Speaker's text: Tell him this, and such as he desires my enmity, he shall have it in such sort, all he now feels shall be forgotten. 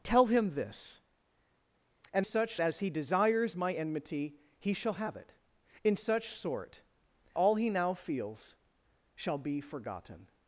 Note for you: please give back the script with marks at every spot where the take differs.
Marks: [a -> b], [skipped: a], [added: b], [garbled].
Tell him this, and such as he desires my enmity, he shall have it in such sort, all he now feels shall be forgotten.